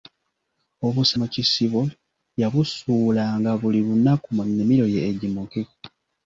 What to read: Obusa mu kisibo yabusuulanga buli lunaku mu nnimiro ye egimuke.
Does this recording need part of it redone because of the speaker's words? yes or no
no